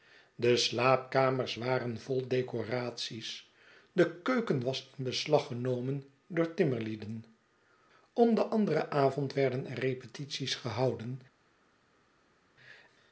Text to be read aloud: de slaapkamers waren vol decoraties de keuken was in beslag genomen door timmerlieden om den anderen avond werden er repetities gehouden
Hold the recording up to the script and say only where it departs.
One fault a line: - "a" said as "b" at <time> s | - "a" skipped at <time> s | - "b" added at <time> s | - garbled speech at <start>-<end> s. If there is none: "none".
none